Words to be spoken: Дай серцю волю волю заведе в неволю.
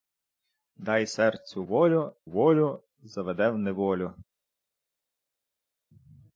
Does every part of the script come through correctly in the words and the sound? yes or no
yes